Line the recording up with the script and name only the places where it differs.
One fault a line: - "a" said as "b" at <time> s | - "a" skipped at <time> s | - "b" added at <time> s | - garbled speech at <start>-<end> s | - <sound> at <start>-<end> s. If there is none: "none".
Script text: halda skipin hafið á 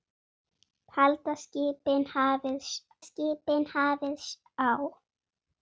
- "skipin hafið" added at 3.1 s